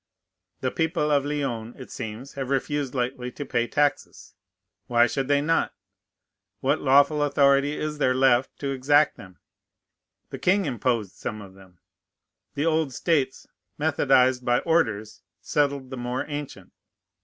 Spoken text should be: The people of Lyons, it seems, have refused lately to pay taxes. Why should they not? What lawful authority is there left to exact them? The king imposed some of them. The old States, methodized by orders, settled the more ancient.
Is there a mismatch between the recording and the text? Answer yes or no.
no